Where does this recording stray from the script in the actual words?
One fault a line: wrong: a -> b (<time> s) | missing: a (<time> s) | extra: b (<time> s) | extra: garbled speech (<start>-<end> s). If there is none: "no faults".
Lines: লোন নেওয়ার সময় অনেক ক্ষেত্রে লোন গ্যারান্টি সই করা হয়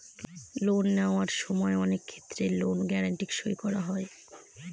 no faults